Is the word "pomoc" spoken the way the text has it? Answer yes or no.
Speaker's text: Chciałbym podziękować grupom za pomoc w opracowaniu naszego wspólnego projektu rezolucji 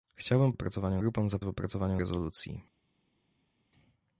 no